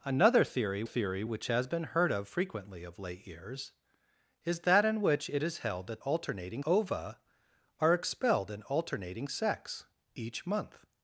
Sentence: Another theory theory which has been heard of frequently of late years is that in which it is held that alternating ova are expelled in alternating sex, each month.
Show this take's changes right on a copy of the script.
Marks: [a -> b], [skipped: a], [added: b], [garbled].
Another theory theory which has been heard of frequently of late years is that in which it is held that alternating ova are expelled in alternating sex, each month.